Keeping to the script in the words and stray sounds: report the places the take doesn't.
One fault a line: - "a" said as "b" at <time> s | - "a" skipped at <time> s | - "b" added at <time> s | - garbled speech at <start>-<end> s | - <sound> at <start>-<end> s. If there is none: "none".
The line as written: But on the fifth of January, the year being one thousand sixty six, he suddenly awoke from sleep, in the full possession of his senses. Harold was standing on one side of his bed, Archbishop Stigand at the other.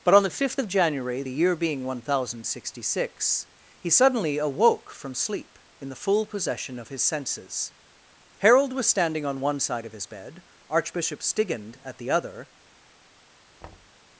- thud at 13.6-14.0 s